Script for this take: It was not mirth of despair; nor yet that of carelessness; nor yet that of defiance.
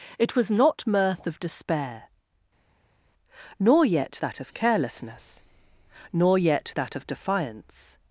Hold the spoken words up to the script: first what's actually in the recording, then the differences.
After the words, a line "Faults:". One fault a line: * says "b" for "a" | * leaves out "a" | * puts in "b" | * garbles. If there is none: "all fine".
It was not mirth of despair; nor yet that of carelessness; nor yet that of defiance.
Faults:
all fine